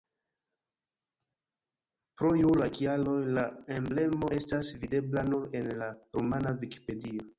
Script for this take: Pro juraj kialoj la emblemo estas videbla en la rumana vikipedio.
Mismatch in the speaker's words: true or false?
true